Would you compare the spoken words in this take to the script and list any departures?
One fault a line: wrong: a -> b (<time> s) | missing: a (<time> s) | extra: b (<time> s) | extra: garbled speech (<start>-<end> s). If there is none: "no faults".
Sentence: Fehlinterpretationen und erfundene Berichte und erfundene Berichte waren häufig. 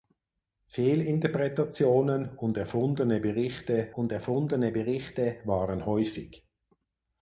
no faults